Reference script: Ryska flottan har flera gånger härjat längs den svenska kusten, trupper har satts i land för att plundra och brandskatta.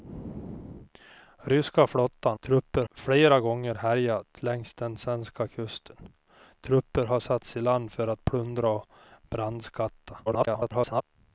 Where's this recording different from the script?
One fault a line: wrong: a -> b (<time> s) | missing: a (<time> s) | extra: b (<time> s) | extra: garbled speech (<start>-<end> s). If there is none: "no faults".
wrong: har -> trupper (2.4 s)
extra: garbled speech (10.3-11.0 s)